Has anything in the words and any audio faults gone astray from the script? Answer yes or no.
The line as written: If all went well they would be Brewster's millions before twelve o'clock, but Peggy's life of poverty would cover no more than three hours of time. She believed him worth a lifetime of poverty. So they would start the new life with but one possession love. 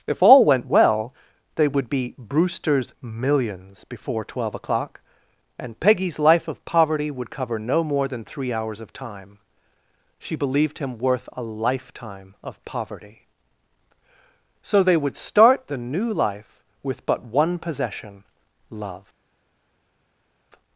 yes